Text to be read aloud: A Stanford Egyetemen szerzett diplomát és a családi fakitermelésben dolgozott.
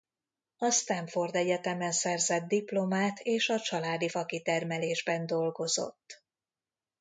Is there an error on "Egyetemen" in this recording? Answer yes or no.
no